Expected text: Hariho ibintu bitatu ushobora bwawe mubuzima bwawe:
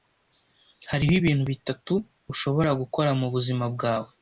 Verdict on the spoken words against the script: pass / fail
fail